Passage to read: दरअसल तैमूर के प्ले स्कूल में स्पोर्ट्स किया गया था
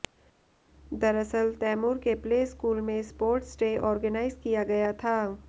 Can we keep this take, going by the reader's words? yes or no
no